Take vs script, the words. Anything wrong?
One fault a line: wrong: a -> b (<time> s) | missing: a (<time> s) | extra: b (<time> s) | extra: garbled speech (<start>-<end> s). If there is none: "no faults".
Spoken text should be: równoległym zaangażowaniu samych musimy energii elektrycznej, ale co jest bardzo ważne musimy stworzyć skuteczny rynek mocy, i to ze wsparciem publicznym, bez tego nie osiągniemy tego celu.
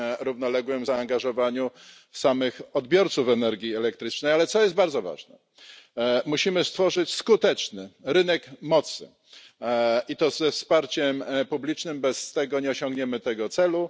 wrong: musimy -> odbiorców (2.7 s)